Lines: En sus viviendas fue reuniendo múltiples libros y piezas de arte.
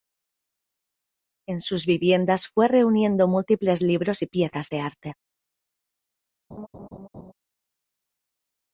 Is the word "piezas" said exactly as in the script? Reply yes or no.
yes